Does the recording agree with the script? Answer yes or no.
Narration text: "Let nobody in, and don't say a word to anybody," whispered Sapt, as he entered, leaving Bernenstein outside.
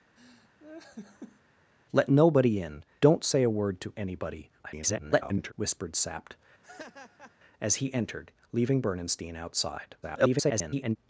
no